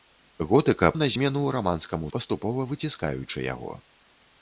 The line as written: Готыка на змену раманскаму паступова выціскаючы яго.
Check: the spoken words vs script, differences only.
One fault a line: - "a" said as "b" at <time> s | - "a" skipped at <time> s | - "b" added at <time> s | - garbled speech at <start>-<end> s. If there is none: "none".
none